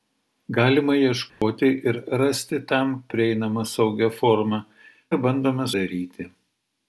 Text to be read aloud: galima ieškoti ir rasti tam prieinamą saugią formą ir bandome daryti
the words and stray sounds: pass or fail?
fail